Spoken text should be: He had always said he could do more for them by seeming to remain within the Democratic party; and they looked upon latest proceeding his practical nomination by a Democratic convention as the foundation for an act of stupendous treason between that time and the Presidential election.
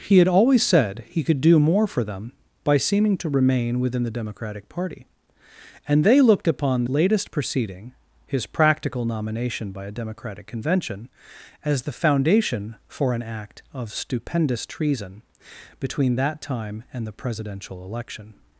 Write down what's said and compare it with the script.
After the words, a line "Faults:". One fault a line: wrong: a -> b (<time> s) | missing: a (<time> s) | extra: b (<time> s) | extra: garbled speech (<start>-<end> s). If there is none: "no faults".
He had always said he could do more for them by seeming to remain within the Democratic party; and they looked upon latest proceeding his practical nomination by a Democratic convention as the foundation for an act of stupendous treason between that time and the Presidential election.
Faults:
no faults